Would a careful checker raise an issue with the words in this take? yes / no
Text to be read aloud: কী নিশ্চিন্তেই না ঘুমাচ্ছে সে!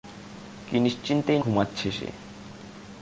yes